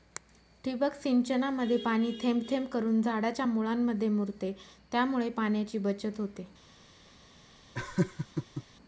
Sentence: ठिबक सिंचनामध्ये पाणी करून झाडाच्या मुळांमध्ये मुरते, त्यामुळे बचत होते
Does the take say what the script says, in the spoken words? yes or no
no